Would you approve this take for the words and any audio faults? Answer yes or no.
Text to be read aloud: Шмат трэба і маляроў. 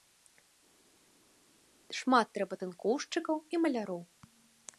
no